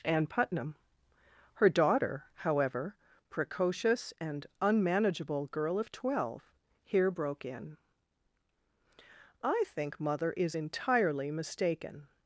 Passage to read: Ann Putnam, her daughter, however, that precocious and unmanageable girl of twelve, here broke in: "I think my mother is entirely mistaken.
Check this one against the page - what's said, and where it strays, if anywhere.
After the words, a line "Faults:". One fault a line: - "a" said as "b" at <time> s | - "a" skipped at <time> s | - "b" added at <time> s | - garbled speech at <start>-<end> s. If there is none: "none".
Ann Putnam, her daughter, however, precocious and unmanageable girl of twelve, here broke in: "I think mother is entirely mistaken.
Faults:
- "that" skipped at 3.0 s
- "my" skipped at 10.0 s